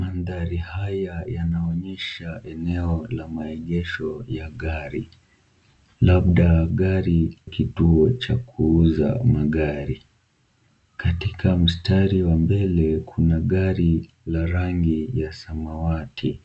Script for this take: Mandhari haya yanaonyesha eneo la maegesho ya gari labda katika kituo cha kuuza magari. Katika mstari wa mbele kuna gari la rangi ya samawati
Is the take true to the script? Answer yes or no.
no